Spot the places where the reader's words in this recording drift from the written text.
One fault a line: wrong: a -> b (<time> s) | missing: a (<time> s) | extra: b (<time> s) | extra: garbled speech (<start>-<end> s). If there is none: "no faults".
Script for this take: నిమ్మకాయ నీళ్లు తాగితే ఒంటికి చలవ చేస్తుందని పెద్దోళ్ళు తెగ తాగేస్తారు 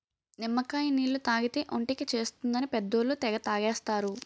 missing: చలవ (2.0 s)